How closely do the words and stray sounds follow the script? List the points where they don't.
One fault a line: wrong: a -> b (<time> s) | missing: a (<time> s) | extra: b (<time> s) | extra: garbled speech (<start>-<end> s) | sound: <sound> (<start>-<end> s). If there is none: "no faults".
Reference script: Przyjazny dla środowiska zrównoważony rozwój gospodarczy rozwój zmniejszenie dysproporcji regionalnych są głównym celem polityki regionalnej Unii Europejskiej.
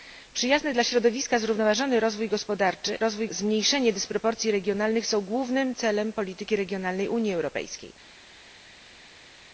no faults